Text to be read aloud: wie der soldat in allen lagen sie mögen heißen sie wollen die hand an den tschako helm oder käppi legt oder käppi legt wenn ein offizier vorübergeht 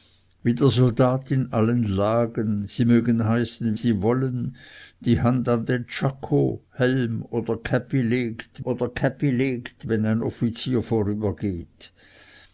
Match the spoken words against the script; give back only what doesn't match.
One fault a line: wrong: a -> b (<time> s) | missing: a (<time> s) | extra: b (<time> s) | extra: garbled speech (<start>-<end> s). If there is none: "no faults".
no faults